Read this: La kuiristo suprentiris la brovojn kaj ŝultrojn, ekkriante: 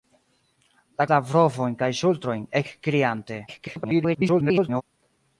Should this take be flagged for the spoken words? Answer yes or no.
yes